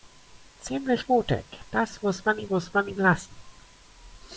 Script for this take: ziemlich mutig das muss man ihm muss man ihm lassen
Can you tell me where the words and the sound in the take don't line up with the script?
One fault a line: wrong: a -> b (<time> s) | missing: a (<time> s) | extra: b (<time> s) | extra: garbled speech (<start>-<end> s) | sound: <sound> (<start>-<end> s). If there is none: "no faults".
no faults